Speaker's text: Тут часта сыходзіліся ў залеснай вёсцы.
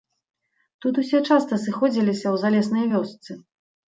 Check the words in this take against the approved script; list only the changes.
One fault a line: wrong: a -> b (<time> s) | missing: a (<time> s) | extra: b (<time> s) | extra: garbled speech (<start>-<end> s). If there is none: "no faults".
extra: усе (1.0 s)